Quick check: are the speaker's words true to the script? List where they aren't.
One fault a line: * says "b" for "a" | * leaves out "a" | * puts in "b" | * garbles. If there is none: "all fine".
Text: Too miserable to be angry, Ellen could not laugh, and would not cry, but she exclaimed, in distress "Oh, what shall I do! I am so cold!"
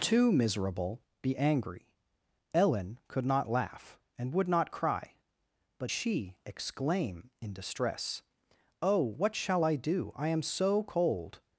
* leaves out "to"
* says "exclaim" for "exclaimed"